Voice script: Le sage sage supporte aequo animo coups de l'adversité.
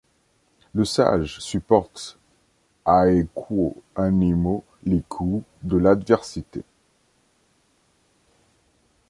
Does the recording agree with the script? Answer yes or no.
no